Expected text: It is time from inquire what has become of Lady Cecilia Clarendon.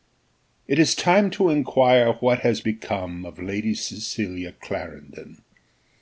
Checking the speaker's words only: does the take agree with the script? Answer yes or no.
no